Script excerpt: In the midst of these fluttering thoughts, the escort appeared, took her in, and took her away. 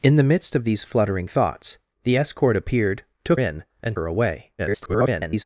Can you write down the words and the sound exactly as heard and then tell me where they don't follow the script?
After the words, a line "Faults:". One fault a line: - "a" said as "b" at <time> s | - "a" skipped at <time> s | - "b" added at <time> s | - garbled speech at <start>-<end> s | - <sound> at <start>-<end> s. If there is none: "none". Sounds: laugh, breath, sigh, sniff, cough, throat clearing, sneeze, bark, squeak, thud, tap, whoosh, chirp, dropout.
In the midst of these fluttering thoughts, the escort appeared, took in, and her away. [garbled]
Faults:
- "her" skipped at 3.4 s
- "took" skipped at 4.0 s
- garbled speech at 4.6-5.4 s